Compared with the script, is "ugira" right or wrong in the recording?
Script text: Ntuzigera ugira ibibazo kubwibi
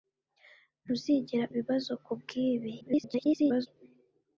wrong